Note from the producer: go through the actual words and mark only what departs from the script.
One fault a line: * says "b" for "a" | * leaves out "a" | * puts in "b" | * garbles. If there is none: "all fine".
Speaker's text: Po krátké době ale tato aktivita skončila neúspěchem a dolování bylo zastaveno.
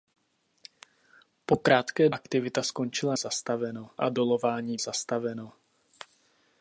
* leaves out "době ale tato"
* says "zastaveno" for "neúspěchem"
* leaves out "bylo"